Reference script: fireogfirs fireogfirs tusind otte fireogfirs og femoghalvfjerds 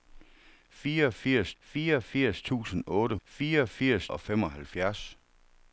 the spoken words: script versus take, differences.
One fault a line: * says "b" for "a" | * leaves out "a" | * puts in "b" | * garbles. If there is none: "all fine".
all fine